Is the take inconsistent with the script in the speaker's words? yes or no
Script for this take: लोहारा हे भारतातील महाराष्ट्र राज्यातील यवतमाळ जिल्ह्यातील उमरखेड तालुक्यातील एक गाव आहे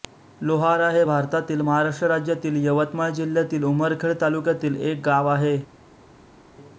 no